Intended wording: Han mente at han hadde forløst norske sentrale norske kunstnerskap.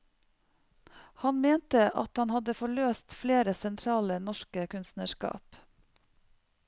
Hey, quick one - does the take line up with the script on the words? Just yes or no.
no